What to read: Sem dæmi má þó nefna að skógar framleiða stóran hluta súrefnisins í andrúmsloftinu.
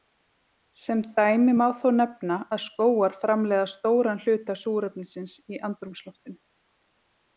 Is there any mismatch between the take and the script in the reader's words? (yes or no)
no